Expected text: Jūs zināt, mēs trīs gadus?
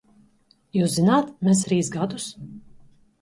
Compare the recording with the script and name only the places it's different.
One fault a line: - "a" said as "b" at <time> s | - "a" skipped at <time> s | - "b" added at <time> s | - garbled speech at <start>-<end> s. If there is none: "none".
none